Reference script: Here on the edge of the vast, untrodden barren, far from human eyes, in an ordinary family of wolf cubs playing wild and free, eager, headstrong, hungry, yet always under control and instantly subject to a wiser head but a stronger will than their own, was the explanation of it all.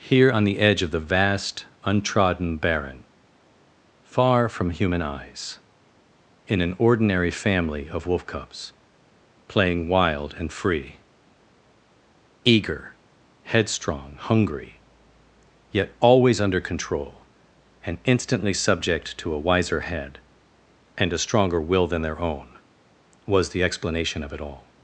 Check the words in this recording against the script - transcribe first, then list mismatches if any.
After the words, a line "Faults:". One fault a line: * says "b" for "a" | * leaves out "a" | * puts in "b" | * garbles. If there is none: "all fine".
Here on the edge of the vast, untrodden barren, far from human eyes, in an ordinary family of wolf cubs playing wild and free, eager, headstrong, hungry, yet always under control and instantly subject to a wiser head and a stronger will than their own, was the explanation of it all.
Faults:
* says "and" for "but"